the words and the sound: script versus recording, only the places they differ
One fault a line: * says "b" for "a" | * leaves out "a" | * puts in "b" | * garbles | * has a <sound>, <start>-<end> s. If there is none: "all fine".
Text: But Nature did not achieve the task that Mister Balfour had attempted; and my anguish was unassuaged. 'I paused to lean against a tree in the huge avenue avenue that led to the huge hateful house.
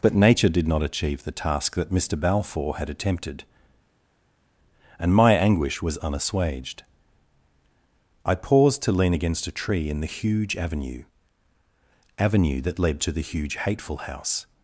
all fine